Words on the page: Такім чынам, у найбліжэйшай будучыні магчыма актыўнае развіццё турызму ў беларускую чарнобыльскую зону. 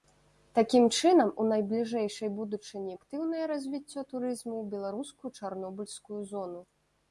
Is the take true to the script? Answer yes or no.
no